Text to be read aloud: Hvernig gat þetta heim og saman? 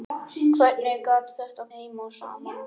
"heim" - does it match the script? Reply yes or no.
yes